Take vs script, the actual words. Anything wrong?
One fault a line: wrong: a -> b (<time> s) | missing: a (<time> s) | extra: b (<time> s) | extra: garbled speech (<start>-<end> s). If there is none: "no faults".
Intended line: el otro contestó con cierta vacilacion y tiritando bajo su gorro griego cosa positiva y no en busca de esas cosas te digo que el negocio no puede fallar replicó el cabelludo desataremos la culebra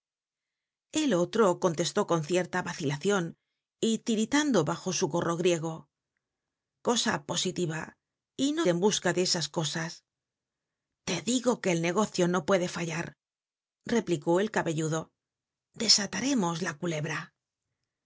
no faults